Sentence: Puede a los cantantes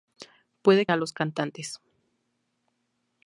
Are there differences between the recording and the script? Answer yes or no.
no